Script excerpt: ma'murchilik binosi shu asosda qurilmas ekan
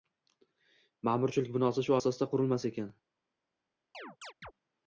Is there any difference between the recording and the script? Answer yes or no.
no